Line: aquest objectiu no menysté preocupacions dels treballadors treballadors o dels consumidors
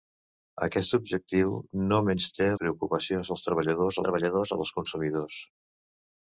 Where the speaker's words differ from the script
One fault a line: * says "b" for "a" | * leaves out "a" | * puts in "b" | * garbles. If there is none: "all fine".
all fine